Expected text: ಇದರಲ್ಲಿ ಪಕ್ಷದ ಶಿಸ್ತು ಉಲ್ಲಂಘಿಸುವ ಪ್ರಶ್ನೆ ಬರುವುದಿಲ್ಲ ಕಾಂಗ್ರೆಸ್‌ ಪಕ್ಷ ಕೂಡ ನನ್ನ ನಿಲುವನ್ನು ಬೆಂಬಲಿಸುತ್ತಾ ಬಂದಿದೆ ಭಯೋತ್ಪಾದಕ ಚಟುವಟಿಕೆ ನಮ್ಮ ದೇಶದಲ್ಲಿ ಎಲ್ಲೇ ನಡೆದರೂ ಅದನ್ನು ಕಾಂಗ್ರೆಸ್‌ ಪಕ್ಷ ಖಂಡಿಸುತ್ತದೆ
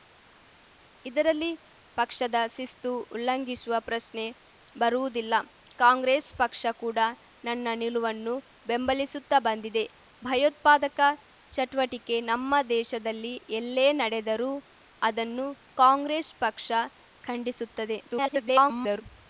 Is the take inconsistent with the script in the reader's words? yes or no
yes